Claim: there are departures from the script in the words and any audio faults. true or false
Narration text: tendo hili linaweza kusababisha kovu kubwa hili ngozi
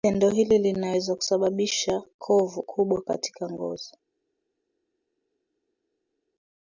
true